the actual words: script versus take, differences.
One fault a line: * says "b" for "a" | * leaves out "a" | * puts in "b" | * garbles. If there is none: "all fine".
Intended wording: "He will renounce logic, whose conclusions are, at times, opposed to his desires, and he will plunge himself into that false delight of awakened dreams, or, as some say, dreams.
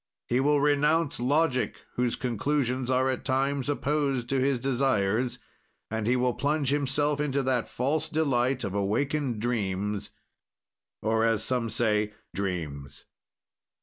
all fine